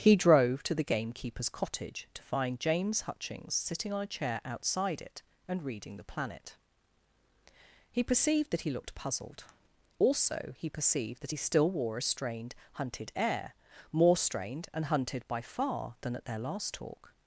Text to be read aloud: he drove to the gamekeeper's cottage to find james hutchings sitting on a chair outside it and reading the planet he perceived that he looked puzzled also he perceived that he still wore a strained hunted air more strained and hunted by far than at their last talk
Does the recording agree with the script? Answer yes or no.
yes